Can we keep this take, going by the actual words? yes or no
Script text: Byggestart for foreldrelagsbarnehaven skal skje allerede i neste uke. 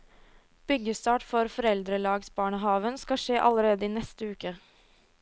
yes